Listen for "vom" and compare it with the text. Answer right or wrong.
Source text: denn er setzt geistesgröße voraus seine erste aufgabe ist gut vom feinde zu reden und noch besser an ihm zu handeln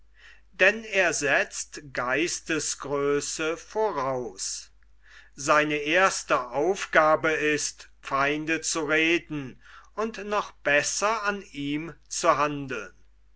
wrong